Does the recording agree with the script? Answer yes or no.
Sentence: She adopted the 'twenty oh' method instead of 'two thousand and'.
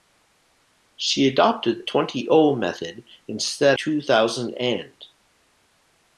no